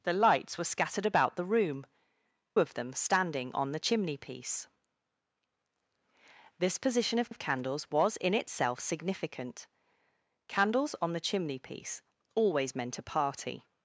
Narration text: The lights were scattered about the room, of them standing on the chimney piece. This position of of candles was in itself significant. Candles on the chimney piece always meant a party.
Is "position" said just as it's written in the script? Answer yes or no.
yes